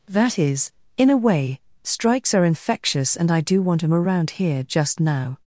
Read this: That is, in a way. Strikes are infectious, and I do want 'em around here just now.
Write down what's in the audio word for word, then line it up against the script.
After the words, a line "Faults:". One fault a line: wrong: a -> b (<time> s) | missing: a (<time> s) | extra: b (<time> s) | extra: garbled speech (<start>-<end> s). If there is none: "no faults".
That is, in a way. Strikes are infectious, and I do want 'em around here just now.
Faults:
no faults